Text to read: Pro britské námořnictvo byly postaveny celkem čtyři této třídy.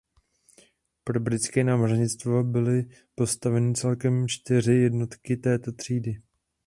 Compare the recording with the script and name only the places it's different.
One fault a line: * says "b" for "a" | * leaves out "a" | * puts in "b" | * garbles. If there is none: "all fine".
* puts in "jednotky"